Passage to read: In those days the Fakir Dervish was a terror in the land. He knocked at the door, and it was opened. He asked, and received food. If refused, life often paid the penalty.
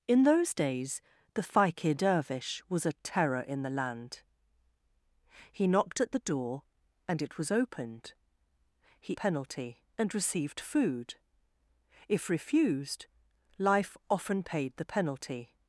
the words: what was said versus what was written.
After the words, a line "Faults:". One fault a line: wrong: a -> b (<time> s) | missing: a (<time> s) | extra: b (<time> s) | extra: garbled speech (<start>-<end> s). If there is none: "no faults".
In those days the Fakir Dervish was a terror in the land. He knocked at the door, and it was opened. He penalty, and received food. If refused, life often paid the penalty.
Faults:
wrong: asked -> penalty (9.1 s)